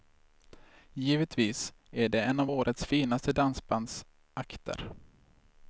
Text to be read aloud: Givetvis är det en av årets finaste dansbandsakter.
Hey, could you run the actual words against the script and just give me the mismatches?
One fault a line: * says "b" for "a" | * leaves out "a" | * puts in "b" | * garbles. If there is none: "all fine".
all fine